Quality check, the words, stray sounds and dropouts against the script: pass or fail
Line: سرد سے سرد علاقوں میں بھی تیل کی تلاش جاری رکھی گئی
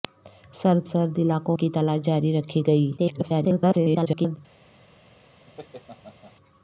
fail